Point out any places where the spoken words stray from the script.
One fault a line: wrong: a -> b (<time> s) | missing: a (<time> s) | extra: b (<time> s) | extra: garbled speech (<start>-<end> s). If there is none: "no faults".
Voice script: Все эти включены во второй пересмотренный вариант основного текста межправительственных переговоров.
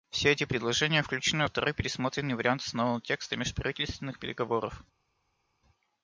extra: предложения (0.5 s)